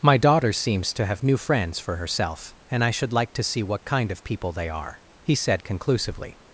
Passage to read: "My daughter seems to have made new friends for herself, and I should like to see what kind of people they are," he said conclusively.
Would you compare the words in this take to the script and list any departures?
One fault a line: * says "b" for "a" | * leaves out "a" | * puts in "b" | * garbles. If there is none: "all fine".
* leaves out "made"